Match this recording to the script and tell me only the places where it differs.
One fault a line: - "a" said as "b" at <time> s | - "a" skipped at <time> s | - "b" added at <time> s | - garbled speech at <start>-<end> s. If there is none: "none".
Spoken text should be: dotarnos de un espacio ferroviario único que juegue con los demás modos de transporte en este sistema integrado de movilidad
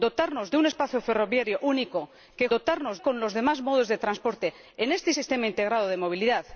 - "juegue" said as "dotarnos" at 2.5 s